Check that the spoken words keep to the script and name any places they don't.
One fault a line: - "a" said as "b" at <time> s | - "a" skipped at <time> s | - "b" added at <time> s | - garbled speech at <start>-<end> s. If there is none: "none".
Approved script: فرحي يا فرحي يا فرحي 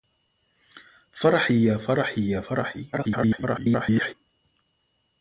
- garbled speech at 2.9-4.1 s